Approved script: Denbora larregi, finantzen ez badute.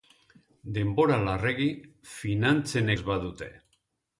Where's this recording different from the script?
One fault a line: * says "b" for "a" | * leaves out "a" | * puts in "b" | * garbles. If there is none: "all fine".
all fine